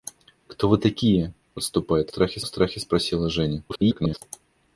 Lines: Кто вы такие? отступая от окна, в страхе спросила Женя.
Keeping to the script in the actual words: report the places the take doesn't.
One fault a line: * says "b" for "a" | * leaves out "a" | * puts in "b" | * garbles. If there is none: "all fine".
* says "страхе" for "окна"
* garbles